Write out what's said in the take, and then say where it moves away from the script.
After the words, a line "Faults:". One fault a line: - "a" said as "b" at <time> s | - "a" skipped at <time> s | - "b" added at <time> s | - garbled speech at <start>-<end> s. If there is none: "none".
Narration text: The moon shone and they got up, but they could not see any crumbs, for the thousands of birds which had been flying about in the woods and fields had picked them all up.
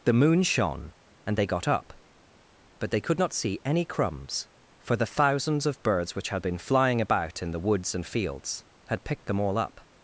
The moon shone and they got up, but they could not see any crumbs, for the thousands of birds which had been flying about in the woods and fields had picked them all up.
Faults:
none